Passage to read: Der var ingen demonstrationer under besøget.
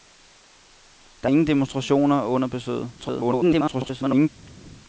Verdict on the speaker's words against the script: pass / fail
fail